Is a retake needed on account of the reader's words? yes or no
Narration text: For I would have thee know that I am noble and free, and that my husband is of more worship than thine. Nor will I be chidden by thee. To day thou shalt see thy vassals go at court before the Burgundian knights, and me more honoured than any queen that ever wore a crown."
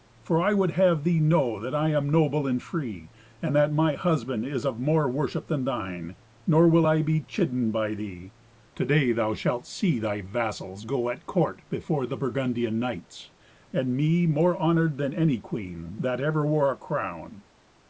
no